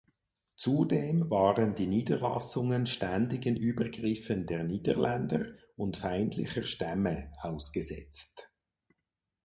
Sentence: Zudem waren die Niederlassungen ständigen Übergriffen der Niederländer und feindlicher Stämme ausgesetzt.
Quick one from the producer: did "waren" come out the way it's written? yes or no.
yes